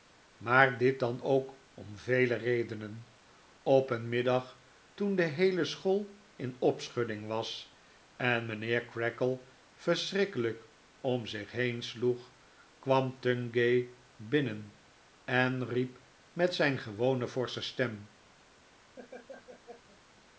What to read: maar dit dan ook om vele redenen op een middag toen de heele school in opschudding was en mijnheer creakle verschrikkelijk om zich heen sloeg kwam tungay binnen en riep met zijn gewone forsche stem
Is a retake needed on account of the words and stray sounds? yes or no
yes